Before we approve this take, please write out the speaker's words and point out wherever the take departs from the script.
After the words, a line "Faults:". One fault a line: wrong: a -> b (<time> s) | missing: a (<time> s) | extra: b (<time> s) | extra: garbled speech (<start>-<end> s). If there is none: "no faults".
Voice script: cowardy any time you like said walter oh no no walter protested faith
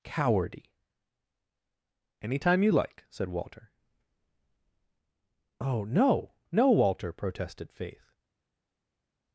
cowardy any time you like said walter oh no no walter protested faith
Faults:
no faults